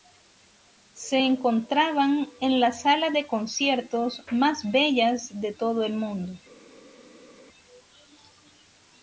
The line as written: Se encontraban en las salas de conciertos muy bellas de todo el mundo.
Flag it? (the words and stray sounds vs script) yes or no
yes